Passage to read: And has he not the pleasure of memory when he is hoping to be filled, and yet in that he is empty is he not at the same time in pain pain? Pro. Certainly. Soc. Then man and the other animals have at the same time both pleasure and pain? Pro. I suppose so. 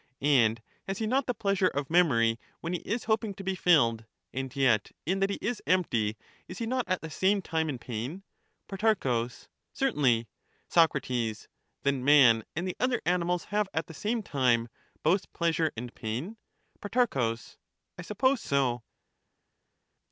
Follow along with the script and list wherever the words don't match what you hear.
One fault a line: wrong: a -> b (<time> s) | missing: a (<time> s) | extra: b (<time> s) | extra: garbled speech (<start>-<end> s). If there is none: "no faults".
missing: pain (8.2 s)